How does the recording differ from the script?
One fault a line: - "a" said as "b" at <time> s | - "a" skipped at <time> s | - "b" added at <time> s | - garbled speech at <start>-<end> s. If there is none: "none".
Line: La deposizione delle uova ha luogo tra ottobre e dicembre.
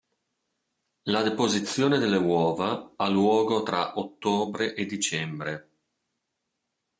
none